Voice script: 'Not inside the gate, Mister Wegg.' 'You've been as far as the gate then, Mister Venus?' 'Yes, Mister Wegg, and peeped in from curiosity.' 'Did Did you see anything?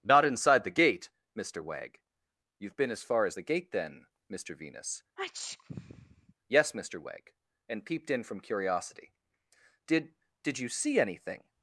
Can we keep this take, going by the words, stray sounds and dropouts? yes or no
no